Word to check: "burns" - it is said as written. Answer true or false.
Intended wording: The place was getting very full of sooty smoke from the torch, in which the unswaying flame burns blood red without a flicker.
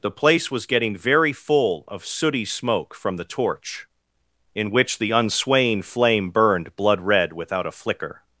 false